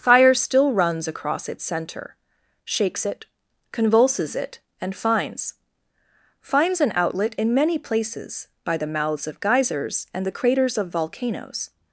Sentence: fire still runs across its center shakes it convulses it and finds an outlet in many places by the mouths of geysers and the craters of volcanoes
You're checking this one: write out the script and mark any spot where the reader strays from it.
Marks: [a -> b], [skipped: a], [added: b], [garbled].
fire still runs across its center shakes it convulses it and finds [added: finds] an outlet in many places by the mouths of geysers and the craters of volcanoes